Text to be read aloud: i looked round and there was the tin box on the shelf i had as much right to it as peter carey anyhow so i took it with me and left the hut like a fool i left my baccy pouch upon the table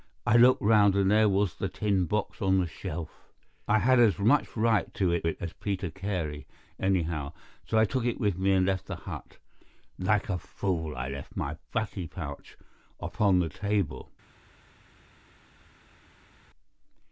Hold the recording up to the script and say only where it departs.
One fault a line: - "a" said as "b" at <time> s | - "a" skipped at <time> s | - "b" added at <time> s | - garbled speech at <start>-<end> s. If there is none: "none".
- "it" added at 5.2 s